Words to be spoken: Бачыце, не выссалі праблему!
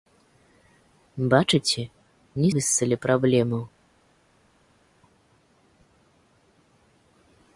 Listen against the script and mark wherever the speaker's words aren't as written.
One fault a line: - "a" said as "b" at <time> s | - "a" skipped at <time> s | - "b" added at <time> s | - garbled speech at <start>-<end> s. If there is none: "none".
none